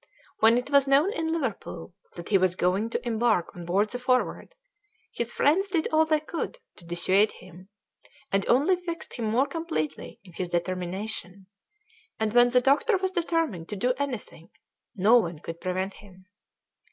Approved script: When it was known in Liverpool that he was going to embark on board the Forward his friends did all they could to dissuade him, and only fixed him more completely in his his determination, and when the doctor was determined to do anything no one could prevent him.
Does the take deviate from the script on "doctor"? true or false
false